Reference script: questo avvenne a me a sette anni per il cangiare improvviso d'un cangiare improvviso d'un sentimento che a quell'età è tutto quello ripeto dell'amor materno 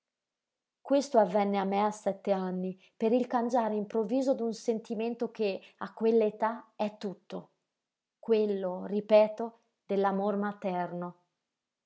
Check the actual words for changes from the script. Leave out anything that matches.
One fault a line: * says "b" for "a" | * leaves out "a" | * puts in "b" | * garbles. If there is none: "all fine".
* leaves out "cangiare improvviso d'un"